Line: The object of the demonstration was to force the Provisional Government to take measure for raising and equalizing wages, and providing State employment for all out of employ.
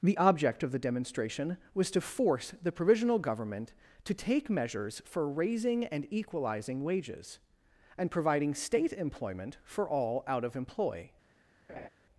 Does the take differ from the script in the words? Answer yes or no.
yes